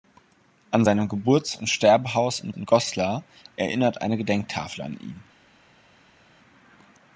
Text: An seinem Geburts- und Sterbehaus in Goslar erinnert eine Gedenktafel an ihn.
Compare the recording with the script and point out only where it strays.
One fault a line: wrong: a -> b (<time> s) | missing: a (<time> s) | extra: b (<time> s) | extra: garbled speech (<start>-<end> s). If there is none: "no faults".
extra: in (2.5 s)